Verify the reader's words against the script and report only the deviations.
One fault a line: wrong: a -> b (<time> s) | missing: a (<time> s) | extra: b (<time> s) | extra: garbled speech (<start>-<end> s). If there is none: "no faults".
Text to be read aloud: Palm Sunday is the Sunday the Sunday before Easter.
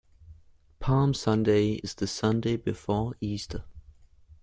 missing: the Sunday (2.6 s)